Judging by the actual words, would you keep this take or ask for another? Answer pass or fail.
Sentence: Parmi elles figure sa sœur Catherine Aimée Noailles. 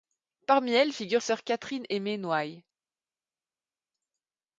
fail